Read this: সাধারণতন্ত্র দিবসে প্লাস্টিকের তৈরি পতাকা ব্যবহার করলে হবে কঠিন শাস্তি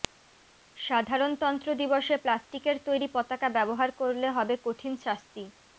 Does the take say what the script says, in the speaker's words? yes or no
yes